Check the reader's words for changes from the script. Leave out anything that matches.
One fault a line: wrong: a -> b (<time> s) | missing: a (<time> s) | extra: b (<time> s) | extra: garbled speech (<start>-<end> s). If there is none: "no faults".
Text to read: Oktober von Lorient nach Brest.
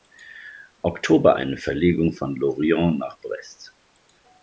extra: eine Verlegung (1.3 s)